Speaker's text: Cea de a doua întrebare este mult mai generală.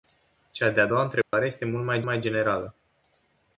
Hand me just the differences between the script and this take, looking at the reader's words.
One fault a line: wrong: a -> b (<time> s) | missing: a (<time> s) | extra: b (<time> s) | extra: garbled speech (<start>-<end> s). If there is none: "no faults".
extra: mai (2.0 s)